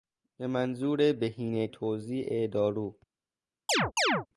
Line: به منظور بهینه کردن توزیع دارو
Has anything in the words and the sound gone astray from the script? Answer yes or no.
yes